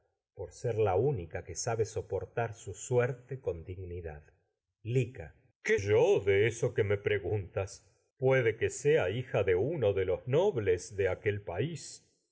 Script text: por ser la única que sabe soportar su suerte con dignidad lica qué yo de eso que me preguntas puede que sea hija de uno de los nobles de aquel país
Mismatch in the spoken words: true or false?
false